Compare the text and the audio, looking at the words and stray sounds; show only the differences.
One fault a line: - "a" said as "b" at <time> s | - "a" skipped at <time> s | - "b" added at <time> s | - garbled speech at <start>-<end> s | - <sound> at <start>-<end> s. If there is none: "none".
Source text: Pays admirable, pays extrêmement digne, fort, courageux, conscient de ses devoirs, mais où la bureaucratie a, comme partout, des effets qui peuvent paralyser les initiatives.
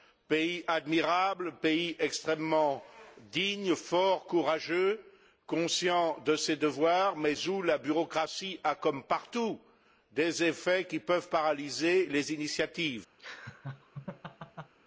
- laugh at 13.2-14.7 s